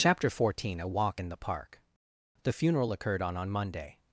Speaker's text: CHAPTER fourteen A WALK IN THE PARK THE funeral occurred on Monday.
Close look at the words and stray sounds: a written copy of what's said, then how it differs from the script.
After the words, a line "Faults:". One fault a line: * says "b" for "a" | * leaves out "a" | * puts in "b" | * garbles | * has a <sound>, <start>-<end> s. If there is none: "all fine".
CHAPTER fourteen A WALK IN THE PARK THE funeral occurred on on Monday.
Faults:
* puts in "on"